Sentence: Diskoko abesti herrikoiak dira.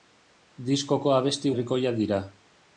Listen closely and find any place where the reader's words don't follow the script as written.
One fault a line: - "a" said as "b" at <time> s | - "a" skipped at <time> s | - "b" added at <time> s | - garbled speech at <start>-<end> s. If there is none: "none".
none